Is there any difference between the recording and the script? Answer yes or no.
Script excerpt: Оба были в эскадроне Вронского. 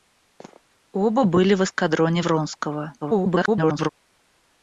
yes